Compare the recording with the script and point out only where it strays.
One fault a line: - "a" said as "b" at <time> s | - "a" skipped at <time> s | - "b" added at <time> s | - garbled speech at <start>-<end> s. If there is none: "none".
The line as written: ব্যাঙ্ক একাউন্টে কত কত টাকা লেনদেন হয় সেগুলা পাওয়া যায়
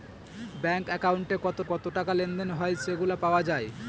none